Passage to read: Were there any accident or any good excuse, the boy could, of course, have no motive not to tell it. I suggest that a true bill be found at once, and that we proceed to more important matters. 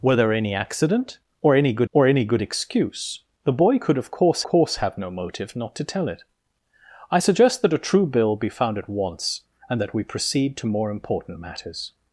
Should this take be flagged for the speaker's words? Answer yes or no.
yes